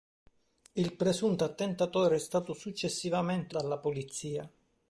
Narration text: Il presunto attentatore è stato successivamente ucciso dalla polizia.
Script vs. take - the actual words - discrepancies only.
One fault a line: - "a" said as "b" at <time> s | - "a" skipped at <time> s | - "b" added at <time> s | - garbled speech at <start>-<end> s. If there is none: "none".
- "ucciso" skipped at 3.5 s